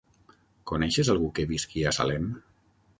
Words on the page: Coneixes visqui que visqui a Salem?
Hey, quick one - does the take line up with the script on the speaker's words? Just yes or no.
no